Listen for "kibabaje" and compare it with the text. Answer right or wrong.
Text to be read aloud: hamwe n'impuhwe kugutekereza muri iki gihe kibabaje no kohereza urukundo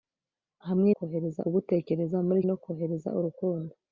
wrong